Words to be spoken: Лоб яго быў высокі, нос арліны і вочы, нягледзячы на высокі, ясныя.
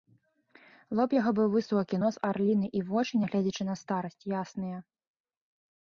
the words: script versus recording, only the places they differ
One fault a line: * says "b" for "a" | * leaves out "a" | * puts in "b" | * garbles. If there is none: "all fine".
* says "старасць" for "высокі"